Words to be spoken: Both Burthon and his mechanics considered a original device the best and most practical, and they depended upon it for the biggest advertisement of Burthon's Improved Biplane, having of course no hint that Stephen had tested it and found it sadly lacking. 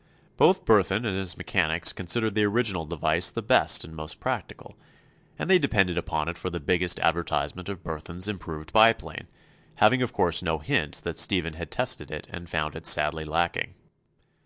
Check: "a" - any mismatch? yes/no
yes